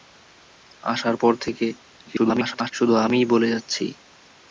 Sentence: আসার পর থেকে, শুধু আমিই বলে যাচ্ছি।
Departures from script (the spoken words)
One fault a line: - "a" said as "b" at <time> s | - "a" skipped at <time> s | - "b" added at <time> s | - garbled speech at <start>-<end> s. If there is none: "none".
- garbled speech at 2.1-2.7 s